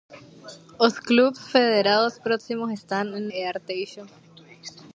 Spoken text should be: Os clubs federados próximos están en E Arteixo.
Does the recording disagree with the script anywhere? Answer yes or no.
no